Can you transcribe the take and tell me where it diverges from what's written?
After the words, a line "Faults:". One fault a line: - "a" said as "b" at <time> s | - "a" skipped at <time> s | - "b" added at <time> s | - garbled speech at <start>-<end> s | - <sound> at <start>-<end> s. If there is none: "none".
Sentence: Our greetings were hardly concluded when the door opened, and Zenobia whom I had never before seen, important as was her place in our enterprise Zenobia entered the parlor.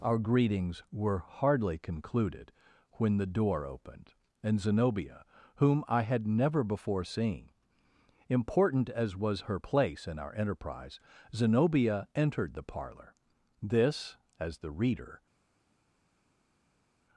Our greetings were hardly concluded when the door opened, and Zenobia whom I had never before seen, important as was her place in our enterprise Zenobia entered the parlor. This (as the reader
Faults:
- "This as the reader" added at 13.6 s